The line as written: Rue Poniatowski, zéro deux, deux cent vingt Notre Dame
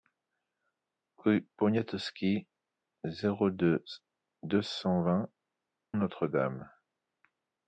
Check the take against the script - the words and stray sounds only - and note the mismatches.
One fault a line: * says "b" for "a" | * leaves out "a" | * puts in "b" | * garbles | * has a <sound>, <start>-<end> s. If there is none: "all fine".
all fine